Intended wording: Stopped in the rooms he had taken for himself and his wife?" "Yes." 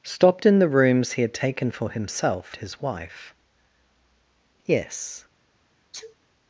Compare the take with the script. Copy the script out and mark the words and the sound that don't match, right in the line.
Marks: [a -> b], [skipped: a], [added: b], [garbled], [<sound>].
Stopped in the rooms he had taken for himself [skipped: and] his wife?" "Yes." [sneeze]